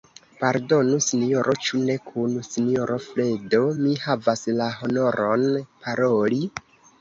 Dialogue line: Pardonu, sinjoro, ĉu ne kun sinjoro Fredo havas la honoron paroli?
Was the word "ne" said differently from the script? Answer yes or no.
no